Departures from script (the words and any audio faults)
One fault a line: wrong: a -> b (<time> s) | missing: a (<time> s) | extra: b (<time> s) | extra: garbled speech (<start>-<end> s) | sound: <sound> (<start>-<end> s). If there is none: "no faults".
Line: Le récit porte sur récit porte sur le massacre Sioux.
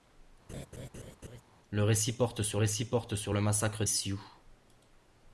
sound: laugh (0.5-1.4 s)